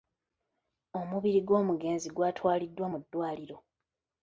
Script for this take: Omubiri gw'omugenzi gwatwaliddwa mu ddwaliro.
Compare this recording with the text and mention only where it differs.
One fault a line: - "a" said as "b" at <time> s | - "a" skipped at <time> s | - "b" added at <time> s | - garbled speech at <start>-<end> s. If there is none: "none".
none